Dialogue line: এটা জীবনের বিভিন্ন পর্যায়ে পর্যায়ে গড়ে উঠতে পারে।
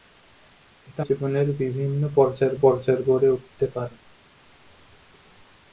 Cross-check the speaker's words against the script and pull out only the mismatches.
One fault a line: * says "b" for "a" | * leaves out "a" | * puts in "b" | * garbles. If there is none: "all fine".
all fine